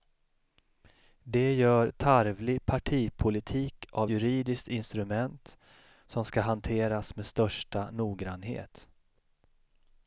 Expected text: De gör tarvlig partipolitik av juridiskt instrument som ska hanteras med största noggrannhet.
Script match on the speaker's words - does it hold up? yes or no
yes